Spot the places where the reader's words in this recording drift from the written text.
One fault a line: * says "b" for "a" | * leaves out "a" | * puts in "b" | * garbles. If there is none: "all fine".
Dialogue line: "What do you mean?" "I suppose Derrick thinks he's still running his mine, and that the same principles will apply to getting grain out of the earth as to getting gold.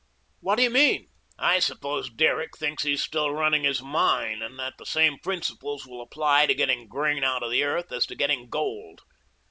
all fine